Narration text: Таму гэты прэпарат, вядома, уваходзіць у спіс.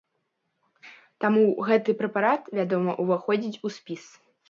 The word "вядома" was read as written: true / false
true